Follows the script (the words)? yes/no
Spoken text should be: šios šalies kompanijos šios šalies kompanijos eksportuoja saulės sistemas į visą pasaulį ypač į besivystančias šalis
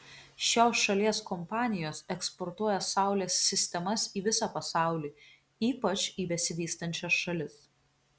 no